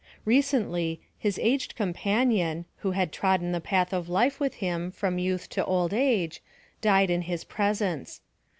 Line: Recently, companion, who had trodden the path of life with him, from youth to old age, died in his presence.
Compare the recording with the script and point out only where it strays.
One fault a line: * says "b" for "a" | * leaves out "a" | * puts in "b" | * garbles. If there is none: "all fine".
* puts in "his aged"